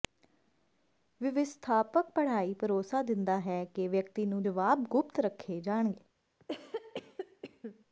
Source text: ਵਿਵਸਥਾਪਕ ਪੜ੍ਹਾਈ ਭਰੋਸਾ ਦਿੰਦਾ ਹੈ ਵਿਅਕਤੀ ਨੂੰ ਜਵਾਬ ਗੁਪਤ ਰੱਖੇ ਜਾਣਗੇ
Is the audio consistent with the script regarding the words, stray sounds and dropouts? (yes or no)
no